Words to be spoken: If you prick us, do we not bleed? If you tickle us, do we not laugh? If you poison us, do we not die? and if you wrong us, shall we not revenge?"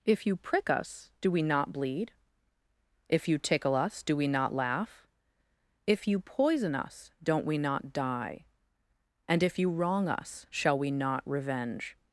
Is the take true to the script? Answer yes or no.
no